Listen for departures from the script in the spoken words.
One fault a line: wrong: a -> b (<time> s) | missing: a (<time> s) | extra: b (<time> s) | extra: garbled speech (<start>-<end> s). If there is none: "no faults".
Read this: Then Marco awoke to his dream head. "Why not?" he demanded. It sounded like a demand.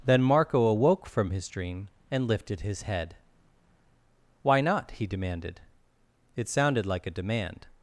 wrong: to -> from (1.1 s)
extra: and lifted his (2.1 s)